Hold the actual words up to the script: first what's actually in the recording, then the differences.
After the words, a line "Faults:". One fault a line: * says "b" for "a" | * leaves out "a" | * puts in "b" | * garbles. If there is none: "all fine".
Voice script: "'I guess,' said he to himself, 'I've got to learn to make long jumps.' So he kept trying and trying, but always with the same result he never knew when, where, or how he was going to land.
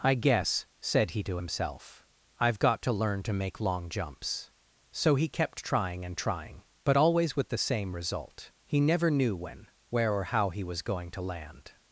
"'I guess,' said he to himself, 'I've got to learn to make long jumps.' So he kept trying and trying, but always with the same result he never knew when, where, or how he was going to land.
Faults:
all fine